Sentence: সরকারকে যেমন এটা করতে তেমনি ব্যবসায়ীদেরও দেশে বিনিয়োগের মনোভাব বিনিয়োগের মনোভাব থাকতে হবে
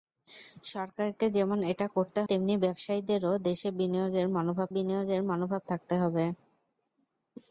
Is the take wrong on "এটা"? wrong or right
right